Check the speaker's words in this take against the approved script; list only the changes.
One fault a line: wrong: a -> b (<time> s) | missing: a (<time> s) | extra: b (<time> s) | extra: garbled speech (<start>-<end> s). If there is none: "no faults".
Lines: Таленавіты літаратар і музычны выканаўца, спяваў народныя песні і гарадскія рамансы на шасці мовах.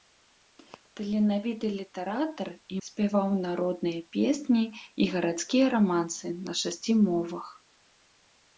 missing: музычны выканаўца (2.8 s)